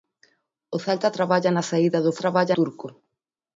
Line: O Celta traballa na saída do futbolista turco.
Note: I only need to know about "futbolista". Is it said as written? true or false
false